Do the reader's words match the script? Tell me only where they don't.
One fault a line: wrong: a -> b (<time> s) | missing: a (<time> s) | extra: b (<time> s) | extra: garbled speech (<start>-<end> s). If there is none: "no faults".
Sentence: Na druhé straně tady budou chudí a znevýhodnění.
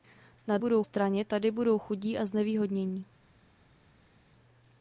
wrong: druhé -> budou (0.6 s)